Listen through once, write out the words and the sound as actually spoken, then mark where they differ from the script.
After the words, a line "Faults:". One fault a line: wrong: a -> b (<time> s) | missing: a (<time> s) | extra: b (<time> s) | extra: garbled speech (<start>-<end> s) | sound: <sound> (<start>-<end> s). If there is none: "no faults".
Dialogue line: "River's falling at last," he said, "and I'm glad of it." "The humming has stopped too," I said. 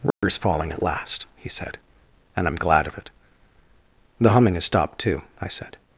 "River's falling at last," he said, "and I'm glad of it." "The humming has stopped too," I said.
Faults:
sound: dropout (0.1-0.2 s)